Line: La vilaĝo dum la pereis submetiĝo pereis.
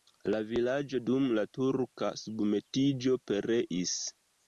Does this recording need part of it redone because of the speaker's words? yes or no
yes